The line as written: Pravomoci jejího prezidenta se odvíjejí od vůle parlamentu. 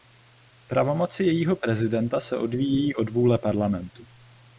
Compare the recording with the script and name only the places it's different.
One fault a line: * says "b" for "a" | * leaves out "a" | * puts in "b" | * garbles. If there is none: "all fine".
all fine